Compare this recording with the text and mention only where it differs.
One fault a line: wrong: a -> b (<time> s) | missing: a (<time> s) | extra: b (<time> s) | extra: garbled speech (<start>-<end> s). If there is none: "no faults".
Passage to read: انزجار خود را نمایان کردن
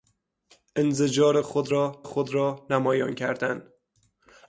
extra: خود را (2.0 s)